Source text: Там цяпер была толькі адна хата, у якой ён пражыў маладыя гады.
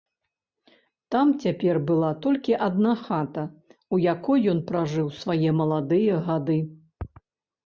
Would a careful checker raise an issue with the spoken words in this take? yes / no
yes